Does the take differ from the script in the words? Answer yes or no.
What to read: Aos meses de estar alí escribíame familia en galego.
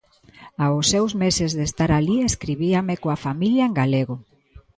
yes